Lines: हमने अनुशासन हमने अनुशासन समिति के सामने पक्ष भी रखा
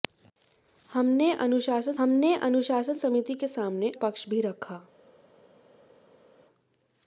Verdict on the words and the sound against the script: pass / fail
pass